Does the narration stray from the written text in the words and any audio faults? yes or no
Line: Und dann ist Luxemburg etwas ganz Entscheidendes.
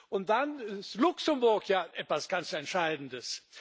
yes